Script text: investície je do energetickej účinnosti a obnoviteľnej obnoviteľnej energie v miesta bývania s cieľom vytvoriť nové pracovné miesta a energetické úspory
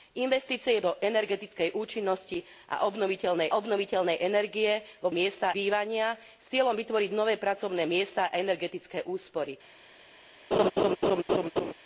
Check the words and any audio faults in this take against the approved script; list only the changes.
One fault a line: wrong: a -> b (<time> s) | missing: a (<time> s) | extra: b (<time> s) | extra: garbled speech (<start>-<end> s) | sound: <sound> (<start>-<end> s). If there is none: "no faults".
sound: laugh (10.5-11.7 s)